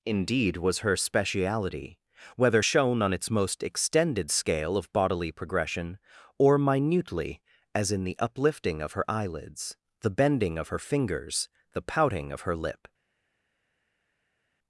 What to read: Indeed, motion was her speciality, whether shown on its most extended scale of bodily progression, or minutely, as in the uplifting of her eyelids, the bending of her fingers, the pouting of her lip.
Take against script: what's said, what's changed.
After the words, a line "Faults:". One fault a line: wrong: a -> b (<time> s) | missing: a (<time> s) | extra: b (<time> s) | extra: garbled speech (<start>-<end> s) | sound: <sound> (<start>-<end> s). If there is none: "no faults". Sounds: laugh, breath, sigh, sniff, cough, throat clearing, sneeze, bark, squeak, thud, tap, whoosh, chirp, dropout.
Indeed, was her speciality, whether shown on its most extended scale of bodily progression, or minutely, as in the uplifting of her eyelids, the bending of her fingers, the pouting of her lip.
Faults:
missing: motion (0.6 s)